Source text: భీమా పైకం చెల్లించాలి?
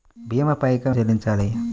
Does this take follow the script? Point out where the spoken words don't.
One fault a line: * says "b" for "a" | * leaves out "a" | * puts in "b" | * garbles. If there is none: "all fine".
all fine